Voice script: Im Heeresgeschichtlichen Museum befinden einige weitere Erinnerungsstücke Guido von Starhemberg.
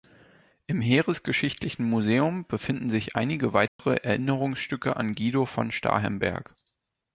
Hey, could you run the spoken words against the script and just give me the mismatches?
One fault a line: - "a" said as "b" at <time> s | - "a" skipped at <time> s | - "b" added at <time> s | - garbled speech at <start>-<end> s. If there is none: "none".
- "sich" added at 2.9 s
- "an" added at 5.0 s